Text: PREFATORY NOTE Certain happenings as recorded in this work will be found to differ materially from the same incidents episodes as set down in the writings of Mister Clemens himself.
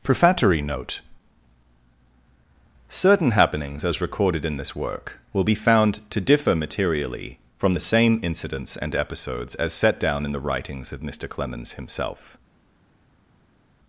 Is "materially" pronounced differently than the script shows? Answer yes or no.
no